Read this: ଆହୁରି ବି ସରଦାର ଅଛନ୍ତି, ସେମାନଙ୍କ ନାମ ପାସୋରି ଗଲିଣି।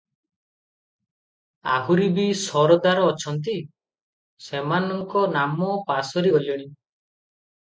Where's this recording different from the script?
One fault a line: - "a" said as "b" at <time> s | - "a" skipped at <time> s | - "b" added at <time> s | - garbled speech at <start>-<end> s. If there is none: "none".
none